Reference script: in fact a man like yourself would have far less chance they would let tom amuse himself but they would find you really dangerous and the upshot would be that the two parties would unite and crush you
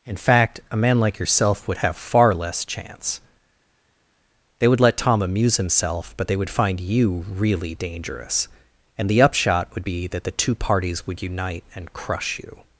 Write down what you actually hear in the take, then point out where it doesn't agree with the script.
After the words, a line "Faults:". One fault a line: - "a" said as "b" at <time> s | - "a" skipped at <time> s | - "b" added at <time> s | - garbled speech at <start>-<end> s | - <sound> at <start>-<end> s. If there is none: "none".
in fact a man like yourself would have far less chance they would let tom amuse himself but they would find you really dangerous and the upshot would be that the two parties would unite and crush you
Faults:
none